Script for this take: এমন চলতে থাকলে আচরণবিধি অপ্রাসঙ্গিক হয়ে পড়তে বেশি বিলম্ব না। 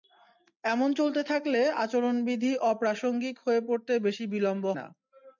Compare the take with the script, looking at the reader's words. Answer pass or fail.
pass